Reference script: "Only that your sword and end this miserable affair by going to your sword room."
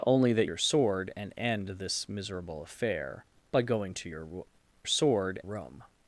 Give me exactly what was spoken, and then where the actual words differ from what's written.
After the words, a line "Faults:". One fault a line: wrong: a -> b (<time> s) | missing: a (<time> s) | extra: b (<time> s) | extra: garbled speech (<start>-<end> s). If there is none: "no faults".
"Only that your sword and end this miserable affair by going to your sword room."
Faults:
no faults